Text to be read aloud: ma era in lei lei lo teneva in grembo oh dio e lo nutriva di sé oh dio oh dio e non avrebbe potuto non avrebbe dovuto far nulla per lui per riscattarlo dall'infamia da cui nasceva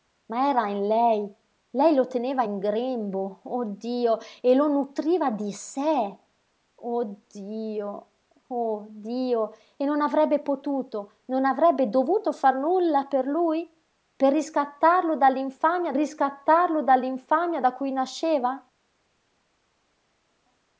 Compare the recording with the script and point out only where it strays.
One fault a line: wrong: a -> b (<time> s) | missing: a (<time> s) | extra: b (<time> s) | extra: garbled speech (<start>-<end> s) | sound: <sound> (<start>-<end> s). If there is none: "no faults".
extra: riscattarlo dall'infamia (16.0 s)